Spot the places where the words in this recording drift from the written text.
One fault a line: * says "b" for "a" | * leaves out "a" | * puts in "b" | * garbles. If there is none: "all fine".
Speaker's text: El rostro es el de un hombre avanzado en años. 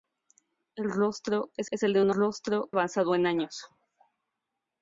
* puts in "es"
* says "rostro" for "hombre"